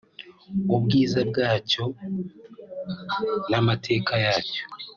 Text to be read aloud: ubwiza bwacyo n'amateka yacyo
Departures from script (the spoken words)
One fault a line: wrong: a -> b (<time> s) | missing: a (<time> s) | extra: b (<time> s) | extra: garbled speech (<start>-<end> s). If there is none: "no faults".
no faults